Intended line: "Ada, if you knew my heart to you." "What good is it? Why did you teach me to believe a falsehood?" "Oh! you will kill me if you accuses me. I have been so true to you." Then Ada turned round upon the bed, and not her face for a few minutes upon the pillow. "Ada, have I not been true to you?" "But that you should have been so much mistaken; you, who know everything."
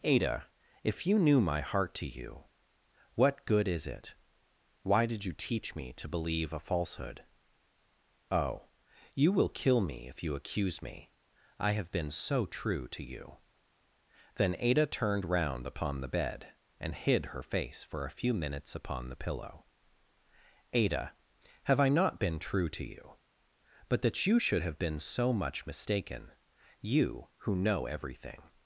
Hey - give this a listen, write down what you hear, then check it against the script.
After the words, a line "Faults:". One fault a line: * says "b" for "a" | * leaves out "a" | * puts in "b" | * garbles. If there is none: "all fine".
"Ada, if you knew my heart to you." "What good is it? Why did you teach me to believe a falsehood?" "Oh! you will kill me if you accuse me. I have been so true to you." Then Ada turned round upon the bed, and hid her face for a few minutes upon the pillow. "Ada, have I not been true to you?" "But that you should have been so much mistaken; you, who know everything."
Faults:
* says "accuse" for "accuses"
* says "hid" for "not"